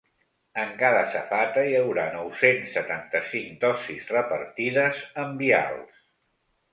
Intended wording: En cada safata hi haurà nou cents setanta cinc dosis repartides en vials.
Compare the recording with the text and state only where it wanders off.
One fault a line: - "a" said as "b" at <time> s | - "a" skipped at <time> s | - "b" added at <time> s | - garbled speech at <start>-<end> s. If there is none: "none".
none